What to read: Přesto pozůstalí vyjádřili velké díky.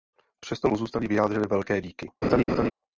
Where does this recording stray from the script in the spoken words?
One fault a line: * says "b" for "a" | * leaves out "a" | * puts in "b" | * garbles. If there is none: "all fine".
all fine